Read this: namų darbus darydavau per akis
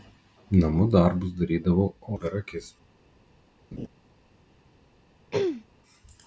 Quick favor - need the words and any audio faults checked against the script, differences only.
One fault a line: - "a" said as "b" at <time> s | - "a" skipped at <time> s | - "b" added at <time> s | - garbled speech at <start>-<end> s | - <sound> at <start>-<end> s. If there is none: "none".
- laugh at 3.7-3.9 s
- throat clearing at 5.3-5.7 s